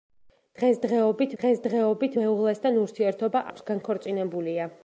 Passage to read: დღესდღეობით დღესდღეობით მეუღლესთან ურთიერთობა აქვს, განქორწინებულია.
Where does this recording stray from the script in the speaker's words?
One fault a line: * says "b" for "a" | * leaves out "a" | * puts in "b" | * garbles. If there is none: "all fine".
all fine